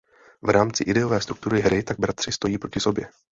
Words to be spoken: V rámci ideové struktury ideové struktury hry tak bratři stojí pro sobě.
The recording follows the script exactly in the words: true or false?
false